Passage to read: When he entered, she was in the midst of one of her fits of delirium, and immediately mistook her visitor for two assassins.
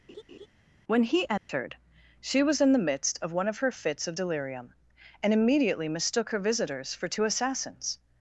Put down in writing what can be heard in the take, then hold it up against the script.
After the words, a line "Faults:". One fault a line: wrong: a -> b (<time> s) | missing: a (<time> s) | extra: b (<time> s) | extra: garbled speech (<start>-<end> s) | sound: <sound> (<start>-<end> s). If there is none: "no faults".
When he entered, she was in the midst of one of her fits of delirium, and immediately mistook her visitors for two assassins.
Faults:
sound: laugh (0.1-0.5 s)
sound: dropout (1.4-1.5 s)
wrong: visitor -> visitors (6.4 s)